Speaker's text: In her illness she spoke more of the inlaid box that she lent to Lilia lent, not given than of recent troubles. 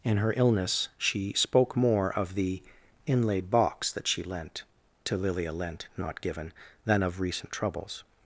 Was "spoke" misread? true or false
false